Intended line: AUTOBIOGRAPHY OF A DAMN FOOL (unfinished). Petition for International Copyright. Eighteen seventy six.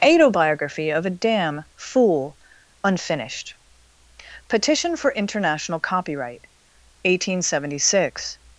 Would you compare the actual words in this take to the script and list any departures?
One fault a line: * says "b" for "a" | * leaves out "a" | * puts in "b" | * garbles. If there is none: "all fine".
all fine